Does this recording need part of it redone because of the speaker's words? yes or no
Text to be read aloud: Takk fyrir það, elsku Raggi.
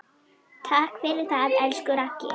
no